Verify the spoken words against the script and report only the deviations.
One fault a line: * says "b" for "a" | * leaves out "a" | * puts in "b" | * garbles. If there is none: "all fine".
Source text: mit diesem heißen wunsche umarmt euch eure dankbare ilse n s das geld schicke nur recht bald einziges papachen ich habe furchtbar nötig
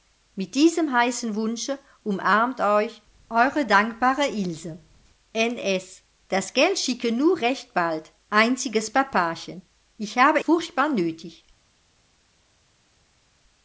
all fine